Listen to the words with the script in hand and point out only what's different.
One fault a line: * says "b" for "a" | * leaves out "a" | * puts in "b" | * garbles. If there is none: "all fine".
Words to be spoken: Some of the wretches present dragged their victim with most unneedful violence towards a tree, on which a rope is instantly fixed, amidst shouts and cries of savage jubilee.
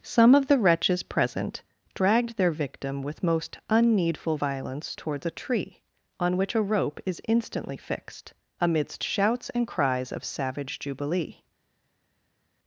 all fine